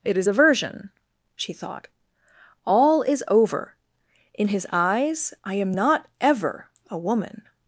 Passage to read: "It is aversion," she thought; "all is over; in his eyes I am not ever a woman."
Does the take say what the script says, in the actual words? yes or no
yes